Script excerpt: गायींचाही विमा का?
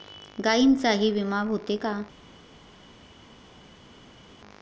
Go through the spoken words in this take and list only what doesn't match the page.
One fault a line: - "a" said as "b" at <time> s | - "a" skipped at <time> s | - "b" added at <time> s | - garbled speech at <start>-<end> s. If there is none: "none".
- "होते" added at 1.4 s